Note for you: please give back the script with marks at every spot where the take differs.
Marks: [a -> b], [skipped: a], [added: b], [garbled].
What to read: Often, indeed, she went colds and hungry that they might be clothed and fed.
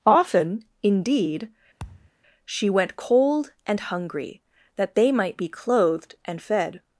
Often, indeed, she went [colds -> cold] and hungry that they might be clothed and fed.